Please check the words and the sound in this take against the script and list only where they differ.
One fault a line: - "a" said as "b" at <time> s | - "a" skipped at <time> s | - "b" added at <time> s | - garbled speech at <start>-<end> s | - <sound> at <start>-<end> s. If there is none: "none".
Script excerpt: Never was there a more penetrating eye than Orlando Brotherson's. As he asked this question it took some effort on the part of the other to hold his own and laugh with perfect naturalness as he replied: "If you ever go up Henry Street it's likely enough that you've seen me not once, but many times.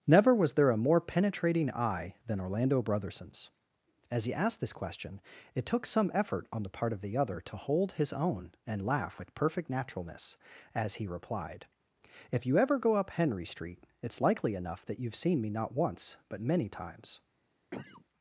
- cough at 17.7-18.1 s